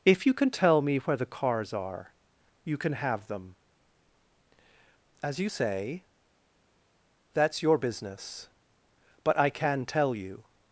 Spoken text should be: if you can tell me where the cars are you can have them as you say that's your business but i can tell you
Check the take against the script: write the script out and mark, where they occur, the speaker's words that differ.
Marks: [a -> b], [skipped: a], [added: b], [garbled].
if you can tell me where the cars are you can have them as you say that's your business but i can tell you